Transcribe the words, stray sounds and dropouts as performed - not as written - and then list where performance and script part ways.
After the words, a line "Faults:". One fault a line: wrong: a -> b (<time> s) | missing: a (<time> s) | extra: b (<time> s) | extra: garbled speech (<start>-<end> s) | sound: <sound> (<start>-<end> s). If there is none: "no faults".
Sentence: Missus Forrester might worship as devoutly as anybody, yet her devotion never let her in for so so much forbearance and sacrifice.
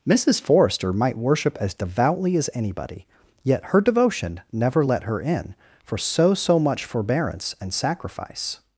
Missus Forrester might worship as devoutly as anybody, yet her devotion never let her in for so so much forbearance and sacrifice.
Faults:
no faults